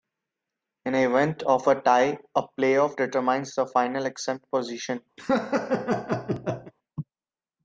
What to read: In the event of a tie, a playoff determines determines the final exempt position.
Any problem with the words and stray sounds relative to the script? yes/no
yes